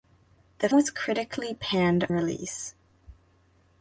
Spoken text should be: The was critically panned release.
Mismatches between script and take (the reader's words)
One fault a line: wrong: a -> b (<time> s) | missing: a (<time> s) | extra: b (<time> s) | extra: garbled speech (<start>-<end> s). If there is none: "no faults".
no faults